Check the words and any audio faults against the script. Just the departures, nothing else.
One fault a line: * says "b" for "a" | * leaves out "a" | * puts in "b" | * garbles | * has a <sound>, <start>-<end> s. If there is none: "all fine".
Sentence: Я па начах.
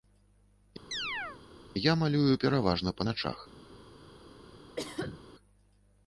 * has a chirp, 0.9-1.4 s
* puts in "малюю пераважна"
* has a cough, 4.8-5.2 s